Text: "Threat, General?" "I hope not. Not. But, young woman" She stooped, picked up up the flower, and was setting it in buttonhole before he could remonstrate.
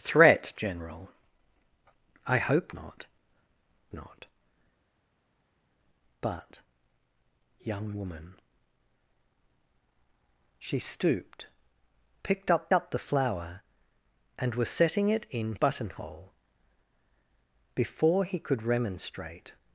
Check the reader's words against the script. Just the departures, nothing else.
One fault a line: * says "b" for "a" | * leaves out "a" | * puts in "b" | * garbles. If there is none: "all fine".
all fine